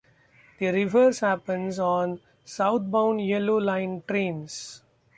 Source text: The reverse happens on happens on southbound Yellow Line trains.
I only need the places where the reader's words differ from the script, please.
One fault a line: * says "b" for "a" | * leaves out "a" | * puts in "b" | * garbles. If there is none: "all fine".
* leaves out "happens on"